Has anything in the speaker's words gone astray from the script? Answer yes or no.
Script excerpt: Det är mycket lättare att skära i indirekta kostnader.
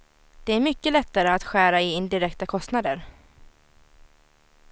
no